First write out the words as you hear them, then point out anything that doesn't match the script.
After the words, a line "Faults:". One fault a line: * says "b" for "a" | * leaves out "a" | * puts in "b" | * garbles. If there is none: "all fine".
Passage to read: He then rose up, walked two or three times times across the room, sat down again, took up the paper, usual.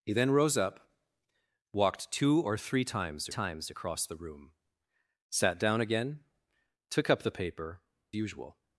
He then rose up, walked two or three times times across the room, sat down again, took up the paper, usual.
Faults:
all fine